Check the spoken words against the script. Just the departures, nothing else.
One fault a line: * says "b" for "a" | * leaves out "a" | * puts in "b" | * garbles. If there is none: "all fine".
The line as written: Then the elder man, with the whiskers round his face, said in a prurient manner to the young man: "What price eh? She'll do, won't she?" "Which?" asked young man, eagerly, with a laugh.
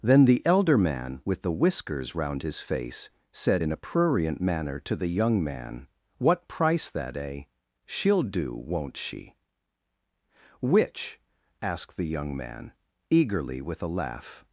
* puts in "that"
* puts in "the"